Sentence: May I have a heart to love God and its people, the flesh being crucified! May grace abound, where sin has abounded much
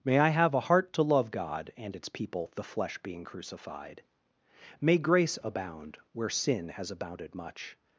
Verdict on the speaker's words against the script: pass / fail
pass